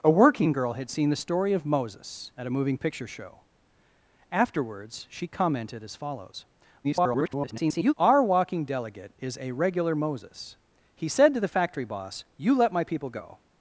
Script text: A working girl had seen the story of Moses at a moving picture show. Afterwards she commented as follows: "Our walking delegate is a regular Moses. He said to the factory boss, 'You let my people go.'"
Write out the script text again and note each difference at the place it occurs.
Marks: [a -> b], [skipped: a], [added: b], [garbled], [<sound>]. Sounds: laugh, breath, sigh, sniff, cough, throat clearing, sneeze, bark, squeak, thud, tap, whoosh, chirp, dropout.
A working girl had seen the story of Moses at a moving picture show. Afterwards she commented as follows: [garbled] "Our walking delegate is a regular Moses. He said to the factory boss, 'You let my people go.'"